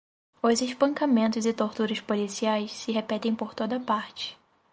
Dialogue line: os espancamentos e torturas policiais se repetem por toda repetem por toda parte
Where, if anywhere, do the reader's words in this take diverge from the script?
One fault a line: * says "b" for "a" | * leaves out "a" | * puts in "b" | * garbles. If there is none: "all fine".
* leaves out "repetem por toda"